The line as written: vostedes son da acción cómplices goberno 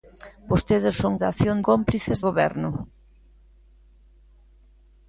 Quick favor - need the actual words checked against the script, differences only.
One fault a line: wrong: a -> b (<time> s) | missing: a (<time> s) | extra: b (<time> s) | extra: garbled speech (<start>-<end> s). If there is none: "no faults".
no faults